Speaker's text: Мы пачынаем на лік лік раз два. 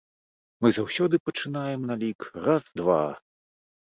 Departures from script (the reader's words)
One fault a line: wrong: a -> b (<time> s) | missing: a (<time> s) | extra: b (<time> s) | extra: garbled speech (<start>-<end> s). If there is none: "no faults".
extra: заўсёды (0.8 s)
missing: лік (2.2 s)